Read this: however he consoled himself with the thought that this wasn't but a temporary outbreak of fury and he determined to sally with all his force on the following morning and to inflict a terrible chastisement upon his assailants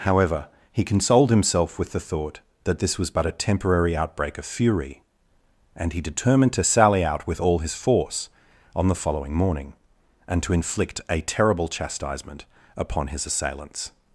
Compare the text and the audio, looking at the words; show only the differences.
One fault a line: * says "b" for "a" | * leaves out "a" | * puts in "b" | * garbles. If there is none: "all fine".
* says "was" for "wasn't"
* puts in "out"